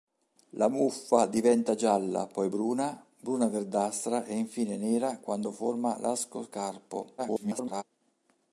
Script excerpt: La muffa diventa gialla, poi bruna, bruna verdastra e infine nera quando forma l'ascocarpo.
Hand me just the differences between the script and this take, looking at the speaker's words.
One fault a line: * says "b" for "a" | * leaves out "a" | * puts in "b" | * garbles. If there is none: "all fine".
* garbles